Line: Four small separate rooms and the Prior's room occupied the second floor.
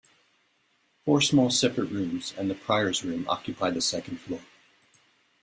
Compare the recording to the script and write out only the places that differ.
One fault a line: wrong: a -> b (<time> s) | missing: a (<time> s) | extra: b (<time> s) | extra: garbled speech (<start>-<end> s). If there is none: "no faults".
no faults